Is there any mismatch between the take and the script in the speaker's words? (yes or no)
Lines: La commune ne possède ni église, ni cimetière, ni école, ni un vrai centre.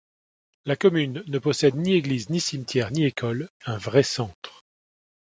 yes